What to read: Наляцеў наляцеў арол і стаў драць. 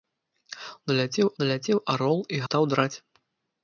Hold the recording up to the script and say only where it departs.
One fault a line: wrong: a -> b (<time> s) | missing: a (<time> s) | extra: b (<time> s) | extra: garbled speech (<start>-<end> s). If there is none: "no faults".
no faults